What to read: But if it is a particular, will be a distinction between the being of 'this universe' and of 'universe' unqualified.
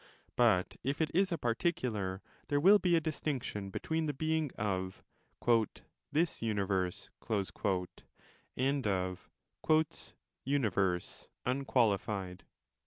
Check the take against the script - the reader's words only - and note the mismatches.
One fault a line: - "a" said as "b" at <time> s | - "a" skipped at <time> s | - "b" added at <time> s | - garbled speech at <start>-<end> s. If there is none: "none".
- "there" added at 2.5 s